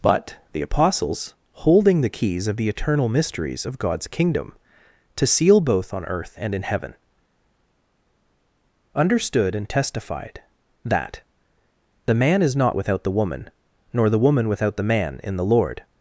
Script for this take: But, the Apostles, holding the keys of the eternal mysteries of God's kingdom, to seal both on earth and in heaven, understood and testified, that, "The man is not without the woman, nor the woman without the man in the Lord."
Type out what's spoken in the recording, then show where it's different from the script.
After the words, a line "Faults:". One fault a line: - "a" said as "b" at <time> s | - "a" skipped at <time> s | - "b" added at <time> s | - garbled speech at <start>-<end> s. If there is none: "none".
But, the Apostles, holding the keys of the eternal mysteries of God's kingdom, to seal both on earth and in heaven, understood and testified, that, "The man is not without the woman, nor the woman without the man in the Lord."
Faults:
none